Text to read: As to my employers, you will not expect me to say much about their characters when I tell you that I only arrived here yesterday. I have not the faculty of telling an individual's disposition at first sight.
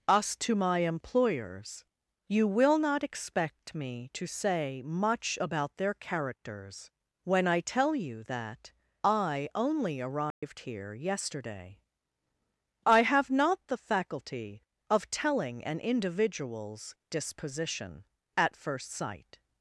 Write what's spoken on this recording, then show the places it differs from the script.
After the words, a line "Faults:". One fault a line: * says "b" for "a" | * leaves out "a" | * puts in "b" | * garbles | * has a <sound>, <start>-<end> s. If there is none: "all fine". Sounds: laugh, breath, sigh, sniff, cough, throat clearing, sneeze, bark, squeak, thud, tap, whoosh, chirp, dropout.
Us to my employers, you will not expect me to say much about their characters when I tell you that I only arrived here yesterday. I have not the faculty of telling an individual's disposition at first sight.
Faults:
* says "Us" for "As"
* has a dropout, 10.3-10.4 s